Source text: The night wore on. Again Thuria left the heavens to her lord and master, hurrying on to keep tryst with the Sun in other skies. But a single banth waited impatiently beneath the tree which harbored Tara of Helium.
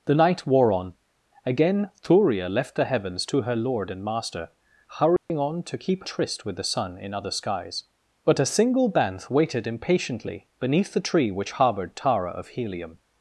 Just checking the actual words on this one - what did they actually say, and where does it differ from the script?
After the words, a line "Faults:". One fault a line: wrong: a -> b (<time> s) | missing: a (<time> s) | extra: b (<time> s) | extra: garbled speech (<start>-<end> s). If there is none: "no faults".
The night wore on. Again Thuria left the heavens to her lord and master, hurrying on to keep tryst with the Sun in other skies. But a single banth waited impatiently beneath the tree which harbored Tara of Helium.
Faults:
no faults